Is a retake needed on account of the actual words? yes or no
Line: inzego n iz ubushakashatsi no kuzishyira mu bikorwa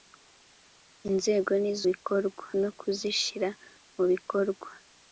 yes